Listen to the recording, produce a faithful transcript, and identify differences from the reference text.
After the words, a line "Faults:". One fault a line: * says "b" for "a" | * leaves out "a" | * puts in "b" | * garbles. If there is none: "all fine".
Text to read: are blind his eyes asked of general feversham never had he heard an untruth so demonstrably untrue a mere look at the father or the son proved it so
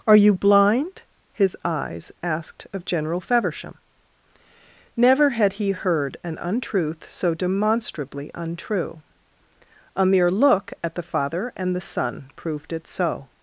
are you blind his eyes asked of general feversham never had he heard an untruth so demonstrably untrue a mere look at the father and the son proved it so
Faults:
* puts in "you"
* says "and" for "or"